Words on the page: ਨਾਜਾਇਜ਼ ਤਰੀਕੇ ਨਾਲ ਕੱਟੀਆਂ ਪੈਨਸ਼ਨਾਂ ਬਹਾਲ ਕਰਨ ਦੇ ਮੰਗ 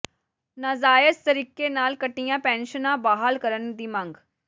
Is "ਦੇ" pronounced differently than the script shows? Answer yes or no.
yes